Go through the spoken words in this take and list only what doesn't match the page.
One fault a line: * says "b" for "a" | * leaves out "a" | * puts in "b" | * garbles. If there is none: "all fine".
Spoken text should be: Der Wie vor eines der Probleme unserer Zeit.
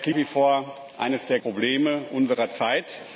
all fine